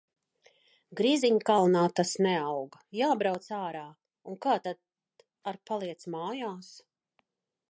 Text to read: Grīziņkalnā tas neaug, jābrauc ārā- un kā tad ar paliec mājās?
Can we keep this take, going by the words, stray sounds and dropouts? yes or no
yes